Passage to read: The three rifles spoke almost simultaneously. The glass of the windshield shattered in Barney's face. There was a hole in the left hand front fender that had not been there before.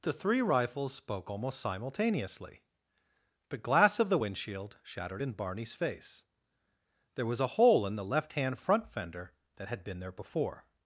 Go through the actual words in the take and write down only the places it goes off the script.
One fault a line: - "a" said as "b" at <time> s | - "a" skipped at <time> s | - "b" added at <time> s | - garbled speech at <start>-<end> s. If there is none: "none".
- "not" skipped at 9.8 s